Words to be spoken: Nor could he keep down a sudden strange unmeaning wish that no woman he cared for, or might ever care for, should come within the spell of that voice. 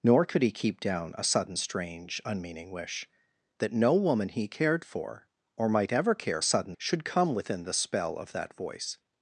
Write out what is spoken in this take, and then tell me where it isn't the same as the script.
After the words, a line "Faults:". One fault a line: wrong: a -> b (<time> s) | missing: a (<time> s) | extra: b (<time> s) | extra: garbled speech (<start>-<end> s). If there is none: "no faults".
Nor could he keep down a sudden strange unmeaning wish that no woman he cared for, or might ever care sudden, should come within the spell of that voice.
Faults:
wrong: for -> sudden (6.4 s)